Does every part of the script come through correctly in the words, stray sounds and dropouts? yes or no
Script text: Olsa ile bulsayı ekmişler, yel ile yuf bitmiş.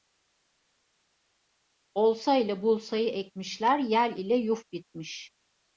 yes